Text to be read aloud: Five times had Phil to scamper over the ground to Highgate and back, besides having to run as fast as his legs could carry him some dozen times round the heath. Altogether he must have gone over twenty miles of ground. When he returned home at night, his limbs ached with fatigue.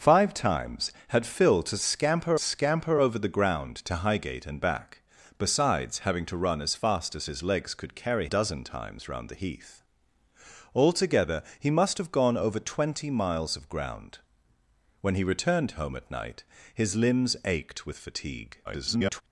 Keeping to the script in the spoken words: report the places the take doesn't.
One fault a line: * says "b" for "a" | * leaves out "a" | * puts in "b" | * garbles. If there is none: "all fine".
* puts in "scamper"
* leaves out "him some"
* garbles